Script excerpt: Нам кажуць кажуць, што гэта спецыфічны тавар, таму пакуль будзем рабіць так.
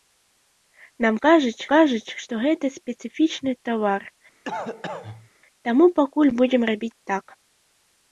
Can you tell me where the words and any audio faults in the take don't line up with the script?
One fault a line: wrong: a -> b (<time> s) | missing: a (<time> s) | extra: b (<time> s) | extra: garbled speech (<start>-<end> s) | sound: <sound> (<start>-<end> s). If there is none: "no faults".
sound: cough (4.4-5.3 s)